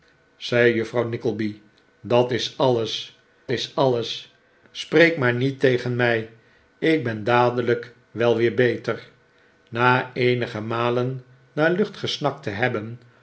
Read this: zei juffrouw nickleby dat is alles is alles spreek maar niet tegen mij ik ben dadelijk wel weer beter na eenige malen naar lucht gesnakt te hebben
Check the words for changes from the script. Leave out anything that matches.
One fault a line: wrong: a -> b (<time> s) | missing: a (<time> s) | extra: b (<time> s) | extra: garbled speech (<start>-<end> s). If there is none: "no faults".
no faults